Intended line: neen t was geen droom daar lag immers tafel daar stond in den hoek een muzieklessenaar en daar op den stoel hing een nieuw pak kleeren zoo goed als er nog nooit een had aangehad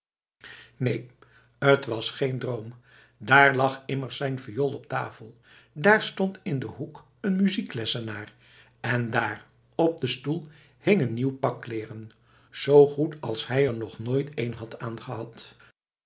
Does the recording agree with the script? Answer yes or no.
no